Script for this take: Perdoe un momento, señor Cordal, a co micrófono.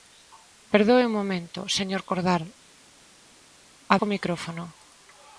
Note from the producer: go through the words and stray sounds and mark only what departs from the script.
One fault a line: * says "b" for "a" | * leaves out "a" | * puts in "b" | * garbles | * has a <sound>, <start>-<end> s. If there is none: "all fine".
all fine